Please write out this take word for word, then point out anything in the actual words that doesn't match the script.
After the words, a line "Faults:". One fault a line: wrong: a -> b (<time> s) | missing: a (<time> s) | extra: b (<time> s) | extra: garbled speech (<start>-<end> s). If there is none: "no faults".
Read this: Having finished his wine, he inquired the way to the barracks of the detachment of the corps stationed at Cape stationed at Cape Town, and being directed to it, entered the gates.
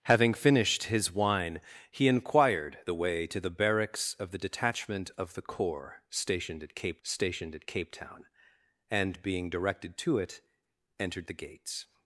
Having finished his wine, he inquired the way to the barracks of the detachment of the corps stationed at Cape stationed at Cape Town, and being directed to it, entered the gates.
Faults:
no faults